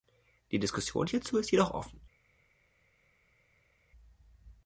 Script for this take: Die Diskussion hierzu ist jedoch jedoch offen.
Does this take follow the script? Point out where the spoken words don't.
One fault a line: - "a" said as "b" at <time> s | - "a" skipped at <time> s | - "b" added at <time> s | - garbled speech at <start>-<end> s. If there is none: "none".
- "jedoch" skipped at 1.7 s